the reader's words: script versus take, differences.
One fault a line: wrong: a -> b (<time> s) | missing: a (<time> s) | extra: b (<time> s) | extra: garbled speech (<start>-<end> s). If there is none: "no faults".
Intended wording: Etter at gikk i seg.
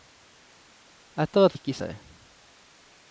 no faults